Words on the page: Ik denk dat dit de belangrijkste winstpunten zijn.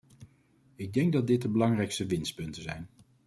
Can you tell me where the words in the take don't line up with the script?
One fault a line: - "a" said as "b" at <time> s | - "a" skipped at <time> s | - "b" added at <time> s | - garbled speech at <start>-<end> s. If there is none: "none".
none